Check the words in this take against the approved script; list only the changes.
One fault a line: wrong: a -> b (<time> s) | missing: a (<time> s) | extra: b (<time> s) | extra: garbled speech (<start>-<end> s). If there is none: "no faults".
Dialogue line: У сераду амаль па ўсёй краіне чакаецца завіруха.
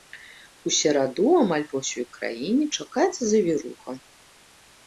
no faults